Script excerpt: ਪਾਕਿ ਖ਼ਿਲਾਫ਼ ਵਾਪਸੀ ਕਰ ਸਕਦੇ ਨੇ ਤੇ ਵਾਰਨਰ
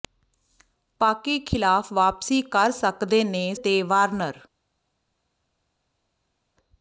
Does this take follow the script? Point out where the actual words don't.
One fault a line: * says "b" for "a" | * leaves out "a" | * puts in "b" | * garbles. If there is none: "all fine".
all fine